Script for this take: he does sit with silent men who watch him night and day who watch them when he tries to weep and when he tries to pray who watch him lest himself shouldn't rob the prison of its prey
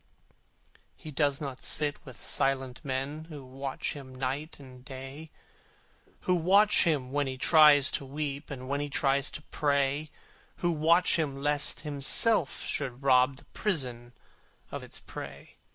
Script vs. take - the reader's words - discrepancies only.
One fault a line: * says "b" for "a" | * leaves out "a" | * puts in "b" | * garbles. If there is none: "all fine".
* puts in "not"
* says "him" for "them"
* says "should" for "shouldn't"